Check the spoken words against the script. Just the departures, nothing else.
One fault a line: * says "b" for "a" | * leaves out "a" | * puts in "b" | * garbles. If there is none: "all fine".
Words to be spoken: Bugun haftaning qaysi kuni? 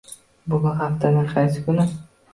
all fine